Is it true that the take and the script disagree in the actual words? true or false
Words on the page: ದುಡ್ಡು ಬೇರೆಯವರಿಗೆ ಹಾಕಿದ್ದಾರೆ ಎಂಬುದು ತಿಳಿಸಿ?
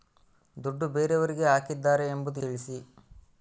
false